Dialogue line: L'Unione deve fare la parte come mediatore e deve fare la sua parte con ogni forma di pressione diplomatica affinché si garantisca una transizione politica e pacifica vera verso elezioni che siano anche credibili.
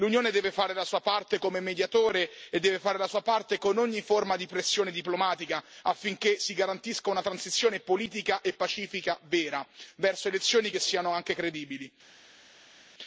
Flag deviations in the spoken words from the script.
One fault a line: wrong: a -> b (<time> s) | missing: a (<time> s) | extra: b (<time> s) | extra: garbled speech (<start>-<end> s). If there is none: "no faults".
extra: sua (0.8 s)